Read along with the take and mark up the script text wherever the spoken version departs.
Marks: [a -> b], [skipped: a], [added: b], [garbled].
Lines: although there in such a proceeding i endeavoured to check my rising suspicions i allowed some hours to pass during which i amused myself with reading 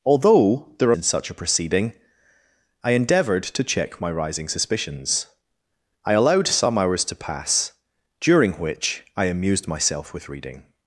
although there in such a proceeding i endeavoured to check my rising suspicions i allowed some hours to pass during which i amused myself with reading